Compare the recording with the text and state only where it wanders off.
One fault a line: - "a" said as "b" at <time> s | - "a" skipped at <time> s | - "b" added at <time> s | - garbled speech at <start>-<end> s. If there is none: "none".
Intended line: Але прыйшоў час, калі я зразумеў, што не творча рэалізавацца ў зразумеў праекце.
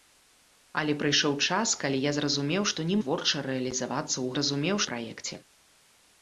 none